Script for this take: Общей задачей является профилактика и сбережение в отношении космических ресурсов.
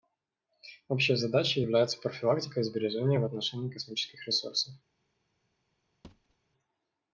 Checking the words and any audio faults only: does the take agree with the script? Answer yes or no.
no